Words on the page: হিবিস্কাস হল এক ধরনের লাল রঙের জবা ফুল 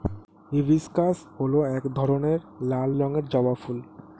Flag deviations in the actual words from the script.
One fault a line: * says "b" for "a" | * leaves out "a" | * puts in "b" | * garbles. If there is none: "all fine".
all fine